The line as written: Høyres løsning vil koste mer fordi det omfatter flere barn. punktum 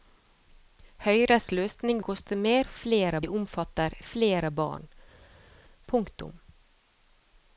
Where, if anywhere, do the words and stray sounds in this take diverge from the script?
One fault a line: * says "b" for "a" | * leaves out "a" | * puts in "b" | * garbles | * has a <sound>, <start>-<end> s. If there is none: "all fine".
* leaves out "vil"
* says "flere" for "fordi"